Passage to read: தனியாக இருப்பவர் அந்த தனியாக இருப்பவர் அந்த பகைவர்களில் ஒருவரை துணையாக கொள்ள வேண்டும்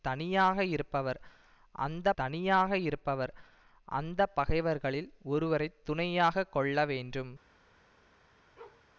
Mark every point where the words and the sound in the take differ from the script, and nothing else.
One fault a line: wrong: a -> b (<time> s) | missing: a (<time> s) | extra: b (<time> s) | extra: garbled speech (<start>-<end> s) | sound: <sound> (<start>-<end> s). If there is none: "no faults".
sound: bark (8.6-8.9 s)